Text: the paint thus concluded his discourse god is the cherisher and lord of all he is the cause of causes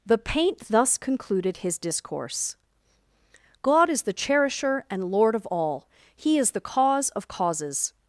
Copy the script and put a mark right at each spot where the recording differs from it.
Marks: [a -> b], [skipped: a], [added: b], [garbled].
the paint thus concluded his discourse god is the cherisher and lord of all he is the cause of causes